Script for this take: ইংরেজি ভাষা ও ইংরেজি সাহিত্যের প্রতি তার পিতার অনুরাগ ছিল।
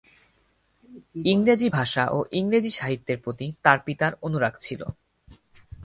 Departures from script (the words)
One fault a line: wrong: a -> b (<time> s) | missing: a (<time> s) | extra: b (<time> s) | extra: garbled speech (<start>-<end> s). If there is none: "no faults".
no faults